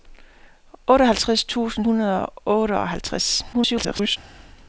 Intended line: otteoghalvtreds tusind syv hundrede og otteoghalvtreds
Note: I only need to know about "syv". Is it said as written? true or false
false